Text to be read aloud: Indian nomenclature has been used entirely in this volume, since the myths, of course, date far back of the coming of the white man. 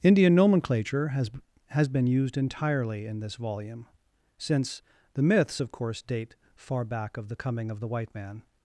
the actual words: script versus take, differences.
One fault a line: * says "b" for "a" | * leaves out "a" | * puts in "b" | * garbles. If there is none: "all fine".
* puts in "has"